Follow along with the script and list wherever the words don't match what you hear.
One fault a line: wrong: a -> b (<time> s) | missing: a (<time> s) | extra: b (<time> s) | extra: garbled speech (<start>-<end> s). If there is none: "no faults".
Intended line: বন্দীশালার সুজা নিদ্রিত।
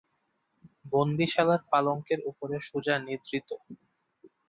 extra: পালঙ্কের উপরে (1.7 s)